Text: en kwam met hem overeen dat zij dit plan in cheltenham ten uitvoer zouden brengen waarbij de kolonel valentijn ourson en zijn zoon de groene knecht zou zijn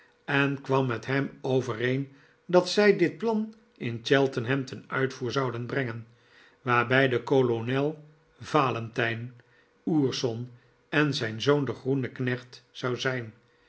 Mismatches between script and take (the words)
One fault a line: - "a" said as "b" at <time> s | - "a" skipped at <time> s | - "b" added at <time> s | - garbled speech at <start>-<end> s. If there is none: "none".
none